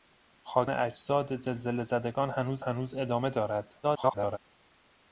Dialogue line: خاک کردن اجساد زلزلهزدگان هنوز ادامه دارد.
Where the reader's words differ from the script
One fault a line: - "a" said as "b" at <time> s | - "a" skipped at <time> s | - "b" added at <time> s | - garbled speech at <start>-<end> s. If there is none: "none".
- "کردن" skipped at 0.7 s
- "هنوز" added at 2.6 s
- garbled speech at 3.8-4.4 s